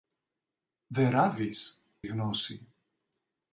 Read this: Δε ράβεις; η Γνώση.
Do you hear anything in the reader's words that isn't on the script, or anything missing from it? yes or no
no